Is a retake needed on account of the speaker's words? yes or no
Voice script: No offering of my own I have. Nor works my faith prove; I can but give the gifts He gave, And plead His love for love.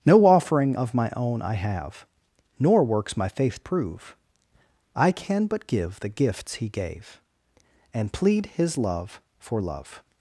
no